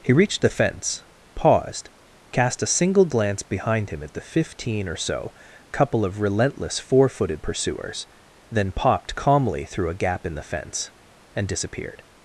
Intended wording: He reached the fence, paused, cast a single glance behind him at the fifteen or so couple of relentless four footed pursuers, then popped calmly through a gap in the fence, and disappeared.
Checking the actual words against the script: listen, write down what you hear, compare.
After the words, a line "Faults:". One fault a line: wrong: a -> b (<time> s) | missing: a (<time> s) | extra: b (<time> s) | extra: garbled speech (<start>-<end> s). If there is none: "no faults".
He reached the fence, paused, cast a single glance behind him at the fifteen or so couple of relentless four footed pursuers, then popped calmly through a gap in the fence, and disappeared.
Faults:
no faults